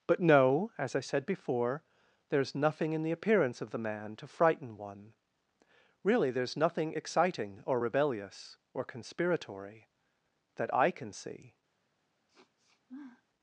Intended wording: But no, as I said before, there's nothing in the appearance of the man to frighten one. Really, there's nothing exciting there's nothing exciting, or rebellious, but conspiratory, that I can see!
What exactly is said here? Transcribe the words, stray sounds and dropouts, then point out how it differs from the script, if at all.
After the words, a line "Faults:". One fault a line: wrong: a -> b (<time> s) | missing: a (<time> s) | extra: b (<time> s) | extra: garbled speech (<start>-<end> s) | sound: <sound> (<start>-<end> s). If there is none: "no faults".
But no, as I said before, there's nothing in the appearance of the man to frighten one. Really, there's nothing exciting, or rebellious, or conspiratory, that I can see!
Faults:
missing: there's nothing exciting (7.6 s)
wrong: but -> or (8.7 s)
sound: sniff (12.3-13.2 s)